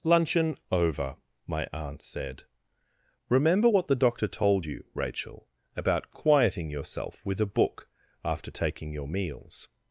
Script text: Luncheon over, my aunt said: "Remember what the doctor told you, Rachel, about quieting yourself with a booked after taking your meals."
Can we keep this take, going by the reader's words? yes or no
no